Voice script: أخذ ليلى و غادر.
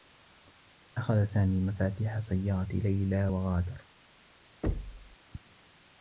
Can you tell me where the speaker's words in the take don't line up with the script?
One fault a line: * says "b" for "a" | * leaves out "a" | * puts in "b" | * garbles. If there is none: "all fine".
* puts in "سامي مفاتيح سيّارة"